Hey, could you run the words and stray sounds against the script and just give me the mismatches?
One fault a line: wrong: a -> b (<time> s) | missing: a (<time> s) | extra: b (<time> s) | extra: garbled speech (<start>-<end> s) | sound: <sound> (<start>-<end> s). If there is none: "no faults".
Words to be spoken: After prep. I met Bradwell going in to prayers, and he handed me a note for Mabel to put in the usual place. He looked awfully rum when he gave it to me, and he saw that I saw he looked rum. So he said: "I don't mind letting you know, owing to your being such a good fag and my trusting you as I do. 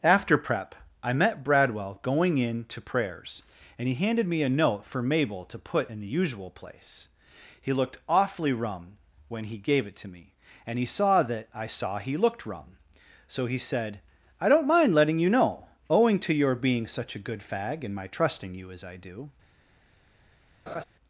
sound: laugh (20.7-20.8 s)